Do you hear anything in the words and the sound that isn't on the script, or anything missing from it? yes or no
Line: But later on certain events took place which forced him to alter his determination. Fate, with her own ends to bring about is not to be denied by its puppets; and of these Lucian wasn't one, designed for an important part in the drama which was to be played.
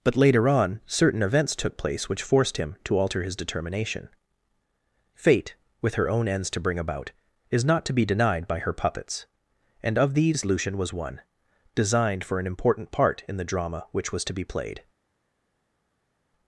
yes